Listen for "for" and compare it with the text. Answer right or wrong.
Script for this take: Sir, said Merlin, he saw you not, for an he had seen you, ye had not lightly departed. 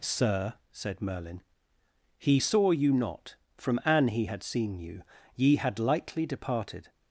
wrong